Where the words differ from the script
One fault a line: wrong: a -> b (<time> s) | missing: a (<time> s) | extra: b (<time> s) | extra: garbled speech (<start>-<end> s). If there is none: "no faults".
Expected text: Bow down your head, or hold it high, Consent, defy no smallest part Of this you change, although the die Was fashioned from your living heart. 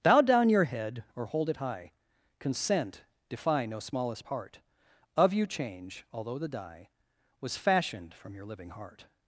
missing: this (5.3 s)